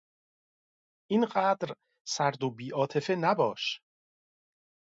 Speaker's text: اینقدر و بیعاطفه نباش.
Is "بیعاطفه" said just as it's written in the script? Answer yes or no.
yes